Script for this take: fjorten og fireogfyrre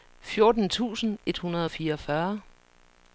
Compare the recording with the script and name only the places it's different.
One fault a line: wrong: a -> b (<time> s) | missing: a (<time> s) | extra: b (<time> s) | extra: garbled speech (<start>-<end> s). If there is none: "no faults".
extra: tusind et hundrede (0.7 s)